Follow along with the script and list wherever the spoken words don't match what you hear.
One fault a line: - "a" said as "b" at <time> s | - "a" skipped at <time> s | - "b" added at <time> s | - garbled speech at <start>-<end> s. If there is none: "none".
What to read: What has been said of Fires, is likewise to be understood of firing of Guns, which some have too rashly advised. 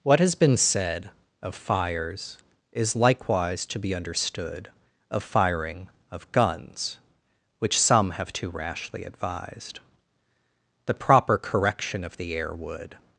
- "The proper Correction of the Air would" added at 10.9 s